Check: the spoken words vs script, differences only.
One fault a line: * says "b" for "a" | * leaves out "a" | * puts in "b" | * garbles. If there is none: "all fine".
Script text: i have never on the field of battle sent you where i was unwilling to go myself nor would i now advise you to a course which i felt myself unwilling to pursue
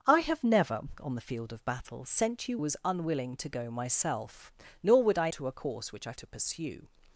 * leaves out "where i"
* leaves out "now advise you"
* leaves out "felt myself unwilling"